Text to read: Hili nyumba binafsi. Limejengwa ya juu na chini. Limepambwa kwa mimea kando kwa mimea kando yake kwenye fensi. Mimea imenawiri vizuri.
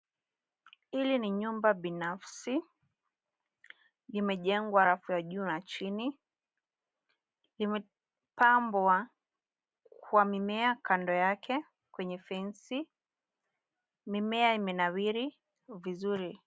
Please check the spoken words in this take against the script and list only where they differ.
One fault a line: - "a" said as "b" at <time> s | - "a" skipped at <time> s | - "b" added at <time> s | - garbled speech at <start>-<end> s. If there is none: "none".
- "ni" added at 1.2 s
- "rafu" added at 4.8 s
- "kwa mimea kando" skipped at 11.1 s